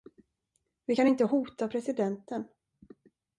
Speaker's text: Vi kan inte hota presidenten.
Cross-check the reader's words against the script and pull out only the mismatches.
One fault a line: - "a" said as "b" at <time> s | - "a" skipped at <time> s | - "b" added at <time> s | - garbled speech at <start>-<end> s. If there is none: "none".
none